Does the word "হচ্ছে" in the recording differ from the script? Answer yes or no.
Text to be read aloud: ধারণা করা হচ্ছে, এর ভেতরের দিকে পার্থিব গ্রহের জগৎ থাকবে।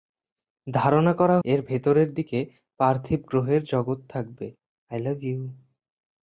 yes